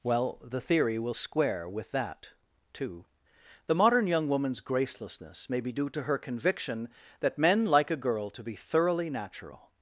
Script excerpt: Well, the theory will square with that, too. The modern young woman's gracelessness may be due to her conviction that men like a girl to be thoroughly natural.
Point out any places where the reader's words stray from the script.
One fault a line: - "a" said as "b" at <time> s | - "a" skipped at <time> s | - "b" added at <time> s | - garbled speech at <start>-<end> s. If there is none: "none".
none